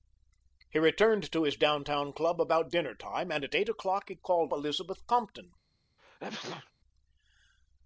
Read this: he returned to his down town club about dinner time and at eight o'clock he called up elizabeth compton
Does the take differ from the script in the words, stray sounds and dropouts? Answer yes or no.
yes